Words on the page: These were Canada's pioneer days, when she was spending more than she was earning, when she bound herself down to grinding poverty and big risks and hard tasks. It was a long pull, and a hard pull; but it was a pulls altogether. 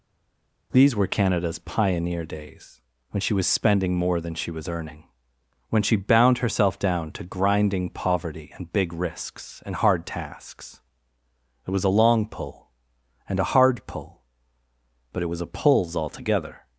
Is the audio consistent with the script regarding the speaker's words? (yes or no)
yes